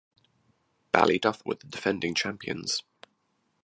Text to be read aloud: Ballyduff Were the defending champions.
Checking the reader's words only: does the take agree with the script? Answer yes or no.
yes